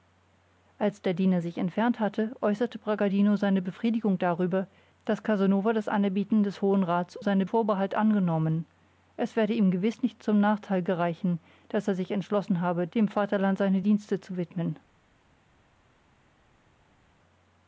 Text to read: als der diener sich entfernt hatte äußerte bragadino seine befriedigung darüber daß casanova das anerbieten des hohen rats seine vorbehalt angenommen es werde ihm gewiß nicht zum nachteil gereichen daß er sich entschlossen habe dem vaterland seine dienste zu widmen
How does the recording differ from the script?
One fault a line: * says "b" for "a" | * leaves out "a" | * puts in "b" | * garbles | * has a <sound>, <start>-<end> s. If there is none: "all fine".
all fine